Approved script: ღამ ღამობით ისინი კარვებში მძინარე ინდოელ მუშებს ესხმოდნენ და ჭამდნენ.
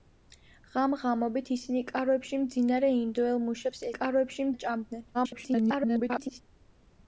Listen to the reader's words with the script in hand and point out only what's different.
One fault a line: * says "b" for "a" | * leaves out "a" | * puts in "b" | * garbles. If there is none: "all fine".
* says "კარვებში" for "ესხმოდნენ"
* garbles